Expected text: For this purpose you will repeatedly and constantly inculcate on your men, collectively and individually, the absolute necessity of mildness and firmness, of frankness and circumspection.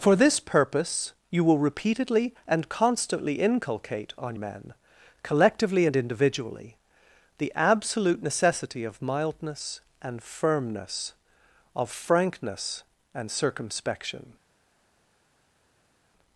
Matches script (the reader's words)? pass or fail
fail